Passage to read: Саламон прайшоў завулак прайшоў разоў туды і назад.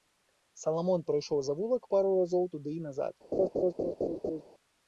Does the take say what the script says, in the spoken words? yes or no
no